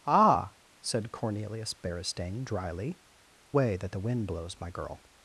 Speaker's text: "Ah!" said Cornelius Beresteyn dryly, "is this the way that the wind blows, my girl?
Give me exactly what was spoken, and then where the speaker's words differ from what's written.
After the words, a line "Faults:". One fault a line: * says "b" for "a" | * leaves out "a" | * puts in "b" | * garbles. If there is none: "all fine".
"Ah!" said Cornelius Beresteyn dryly, "way that the wind blows, my girl?
Faults:
* leaves out "is this the"